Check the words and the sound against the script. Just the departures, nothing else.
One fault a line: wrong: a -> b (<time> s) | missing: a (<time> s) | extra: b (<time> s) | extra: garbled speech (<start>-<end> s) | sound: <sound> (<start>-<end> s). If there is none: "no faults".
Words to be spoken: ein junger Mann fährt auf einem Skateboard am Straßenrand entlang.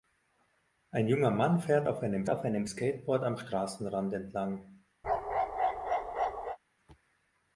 extra: auf einem (2.3 s)
sound: bark (5.0-6.6 s)